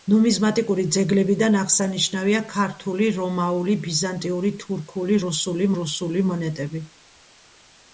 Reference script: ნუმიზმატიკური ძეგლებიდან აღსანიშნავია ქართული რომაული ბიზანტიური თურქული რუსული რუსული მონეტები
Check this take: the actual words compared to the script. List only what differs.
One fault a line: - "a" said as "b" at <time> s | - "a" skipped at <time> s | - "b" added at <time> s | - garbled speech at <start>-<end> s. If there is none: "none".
none